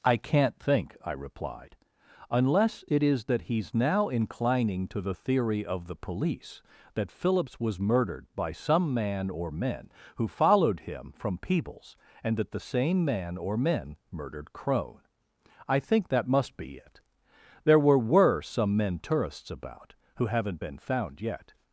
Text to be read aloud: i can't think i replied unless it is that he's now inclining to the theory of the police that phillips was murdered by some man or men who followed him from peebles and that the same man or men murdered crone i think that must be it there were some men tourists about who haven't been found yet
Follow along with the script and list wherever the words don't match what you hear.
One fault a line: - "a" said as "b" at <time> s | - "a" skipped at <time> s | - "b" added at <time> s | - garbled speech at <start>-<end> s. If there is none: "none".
- "were" added at 18.0 s